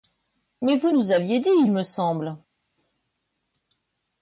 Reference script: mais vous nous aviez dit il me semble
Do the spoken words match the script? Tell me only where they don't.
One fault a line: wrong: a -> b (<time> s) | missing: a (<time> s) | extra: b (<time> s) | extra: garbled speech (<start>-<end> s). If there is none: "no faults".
no faults